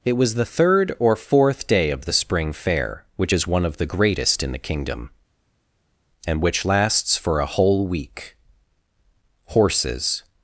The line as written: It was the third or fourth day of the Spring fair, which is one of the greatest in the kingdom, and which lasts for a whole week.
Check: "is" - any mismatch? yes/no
no